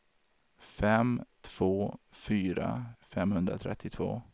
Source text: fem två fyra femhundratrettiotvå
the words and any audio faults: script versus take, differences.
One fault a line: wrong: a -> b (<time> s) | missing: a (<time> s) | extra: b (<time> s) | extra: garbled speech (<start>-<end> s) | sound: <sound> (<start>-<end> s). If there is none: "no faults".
no faults